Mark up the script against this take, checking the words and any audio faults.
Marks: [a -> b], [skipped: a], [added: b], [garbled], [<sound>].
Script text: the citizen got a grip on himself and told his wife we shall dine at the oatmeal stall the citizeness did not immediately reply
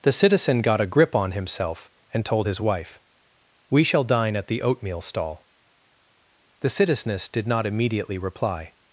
the citizen got a grip on himself and told his wife we shall dine at the oatmeal stall the citizeness did not immediately reply